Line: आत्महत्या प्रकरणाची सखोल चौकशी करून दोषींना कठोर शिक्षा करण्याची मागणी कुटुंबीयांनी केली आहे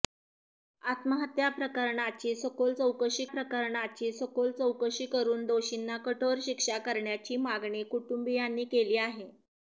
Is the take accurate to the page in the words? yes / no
no